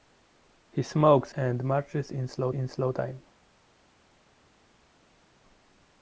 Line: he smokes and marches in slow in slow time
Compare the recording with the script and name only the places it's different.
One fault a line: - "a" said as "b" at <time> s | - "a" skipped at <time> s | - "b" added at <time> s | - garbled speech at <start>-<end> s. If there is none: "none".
none